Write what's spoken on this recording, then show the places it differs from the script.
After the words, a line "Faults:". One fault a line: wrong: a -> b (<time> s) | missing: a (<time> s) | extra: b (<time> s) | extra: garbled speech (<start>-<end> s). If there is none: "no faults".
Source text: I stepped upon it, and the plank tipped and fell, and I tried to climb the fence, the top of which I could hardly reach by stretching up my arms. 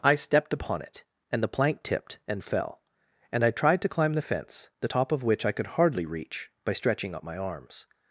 I stepped upon it, and the plank tipped and fell, and I tried to climb the fence, the top of which I could hardly reach by stretching up my arms.
Faults:
no faults